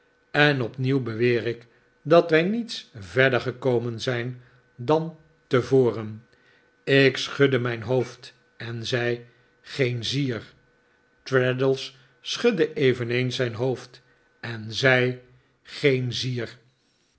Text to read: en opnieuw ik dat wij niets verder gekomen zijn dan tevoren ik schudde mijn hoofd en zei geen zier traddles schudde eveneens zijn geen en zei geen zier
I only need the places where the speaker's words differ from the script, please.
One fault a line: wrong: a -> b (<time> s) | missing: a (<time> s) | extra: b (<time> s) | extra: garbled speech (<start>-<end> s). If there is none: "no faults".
extra: beweer (1.0 s)
wrong: geen -> hoofd (13.5 s)